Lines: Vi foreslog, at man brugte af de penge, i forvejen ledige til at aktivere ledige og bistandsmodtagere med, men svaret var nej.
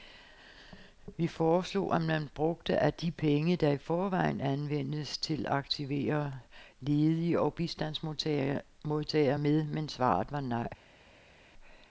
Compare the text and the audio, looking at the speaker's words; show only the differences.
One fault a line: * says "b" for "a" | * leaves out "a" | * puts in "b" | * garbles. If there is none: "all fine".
* puts in "der"
* says "anvendes" for "ledige"